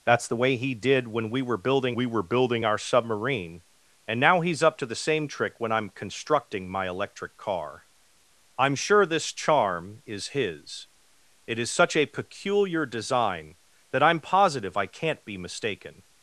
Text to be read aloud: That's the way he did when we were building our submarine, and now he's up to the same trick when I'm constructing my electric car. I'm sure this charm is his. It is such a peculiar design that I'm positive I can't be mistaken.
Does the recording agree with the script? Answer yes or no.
no